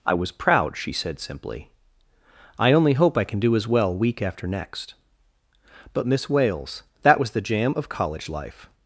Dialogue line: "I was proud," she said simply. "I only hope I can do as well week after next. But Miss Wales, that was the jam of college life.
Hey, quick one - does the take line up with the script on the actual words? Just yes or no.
yes